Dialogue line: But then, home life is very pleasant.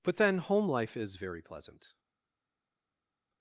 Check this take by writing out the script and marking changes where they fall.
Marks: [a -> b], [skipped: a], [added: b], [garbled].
But then, home life is very pleasant.